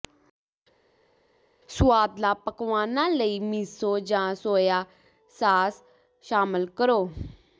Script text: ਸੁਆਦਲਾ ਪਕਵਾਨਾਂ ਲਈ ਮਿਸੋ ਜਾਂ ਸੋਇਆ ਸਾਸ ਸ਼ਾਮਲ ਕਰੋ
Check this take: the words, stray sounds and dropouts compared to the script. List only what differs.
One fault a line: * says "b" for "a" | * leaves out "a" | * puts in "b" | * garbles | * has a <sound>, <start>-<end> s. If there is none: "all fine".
all fine